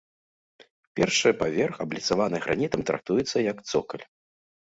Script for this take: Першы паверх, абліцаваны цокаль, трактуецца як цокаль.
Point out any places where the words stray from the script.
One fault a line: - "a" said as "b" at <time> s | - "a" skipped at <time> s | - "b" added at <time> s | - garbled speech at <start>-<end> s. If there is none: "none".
- "цокаль" said as "гранітам" at 2.5 s